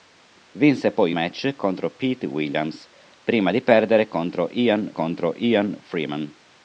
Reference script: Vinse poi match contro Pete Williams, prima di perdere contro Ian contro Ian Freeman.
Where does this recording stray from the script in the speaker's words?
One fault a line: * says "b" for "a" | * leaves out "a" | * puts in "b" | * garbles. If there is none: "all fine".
all fine